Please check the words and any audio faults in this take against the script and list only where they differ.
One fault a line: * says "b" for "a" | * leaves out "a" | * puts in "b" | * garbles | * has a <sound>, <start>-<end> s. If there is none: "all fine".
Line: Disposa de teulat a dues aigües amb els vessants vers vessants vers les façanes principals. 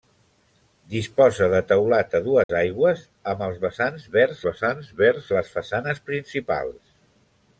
* has a dropout, 2.4-2.5 s